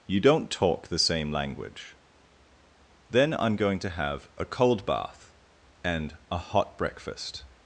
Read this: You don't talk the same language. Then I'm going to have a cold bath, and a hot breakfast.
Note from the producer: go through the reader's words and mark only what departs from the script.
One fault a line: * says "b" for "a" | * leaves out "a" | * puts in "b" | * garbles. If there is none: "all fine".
all fine